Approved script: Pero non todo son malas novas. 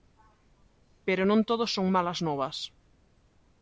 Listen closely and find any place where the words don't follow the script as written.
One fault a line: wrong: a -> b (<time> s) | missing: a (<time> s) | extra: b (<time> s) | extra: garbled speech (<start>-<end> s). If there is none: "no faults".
no faults